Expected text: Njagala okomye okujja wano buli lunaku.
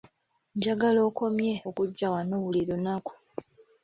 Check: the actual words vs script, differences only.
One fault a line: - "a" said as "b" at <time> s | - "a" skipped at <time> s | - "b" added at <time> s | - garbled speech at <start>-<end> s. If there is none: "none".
none